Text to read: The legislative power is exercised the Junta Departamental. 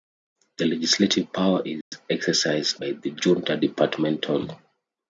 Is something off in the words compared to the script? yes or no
yes